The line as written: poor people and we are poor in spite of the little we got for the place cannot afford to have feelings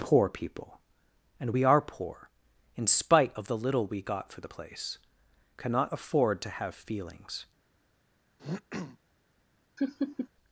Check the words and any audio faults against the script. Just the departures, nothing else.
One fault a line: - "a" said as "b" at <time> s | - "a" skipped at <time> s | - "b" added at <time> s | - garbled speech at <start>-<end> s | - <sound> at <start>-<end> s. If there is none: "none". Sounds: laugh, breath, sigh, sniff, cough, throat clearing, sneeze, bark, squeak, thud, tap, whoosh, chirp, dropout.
- throat clearing at 8.4-9.0 s
- laugh at 9.8-10.3 s